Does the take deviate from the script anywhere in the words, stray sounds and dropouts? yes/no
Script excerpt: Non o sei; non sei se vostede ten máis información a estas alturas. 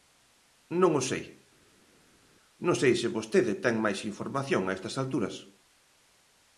no